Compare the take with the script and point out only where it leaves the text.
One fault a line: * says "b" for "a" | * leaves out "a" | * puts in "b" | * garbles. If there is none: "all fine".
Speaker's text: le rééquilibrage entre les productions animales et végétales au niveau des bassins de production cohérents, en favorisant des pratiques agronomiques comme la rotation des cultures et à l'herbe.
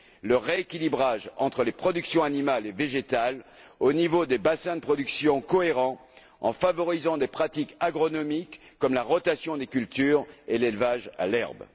* puts in "l'élevage"